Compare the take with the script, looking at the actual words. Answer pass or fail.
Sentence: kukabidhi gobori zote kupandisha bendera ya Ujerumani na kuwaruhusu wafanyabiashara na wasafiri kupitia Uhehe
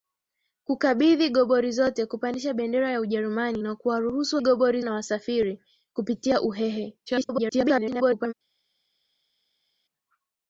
fail